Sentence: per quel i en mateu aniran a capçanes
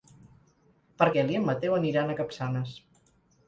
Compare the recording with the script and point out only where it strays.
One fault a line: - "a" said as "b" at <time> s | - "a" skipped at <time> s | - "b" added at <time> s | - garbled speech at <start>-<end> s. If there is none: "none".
none